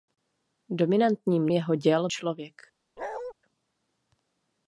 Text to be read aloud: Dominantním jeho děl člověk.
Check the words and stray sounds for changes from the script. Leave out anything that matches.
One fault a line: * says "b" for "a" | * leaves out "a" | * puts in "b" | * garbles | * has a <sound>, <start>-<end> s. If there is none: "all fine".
* has a bark, 3.0-3.3 s